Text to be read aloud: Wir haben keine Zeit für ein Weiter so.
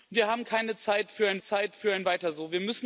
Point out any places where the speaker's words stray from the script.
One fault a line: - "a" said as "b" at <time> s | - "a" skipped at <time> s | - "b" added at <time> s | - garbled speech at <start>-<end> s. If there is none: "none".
- "Zeit für ein" added at 1.4 s